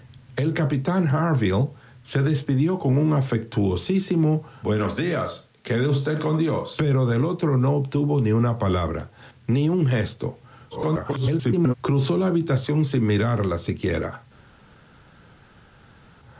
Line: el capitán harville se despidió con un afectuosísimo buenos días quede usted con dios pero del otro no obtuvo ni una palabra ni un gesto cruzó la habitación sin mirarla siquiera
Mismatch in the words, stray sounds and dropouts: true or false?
true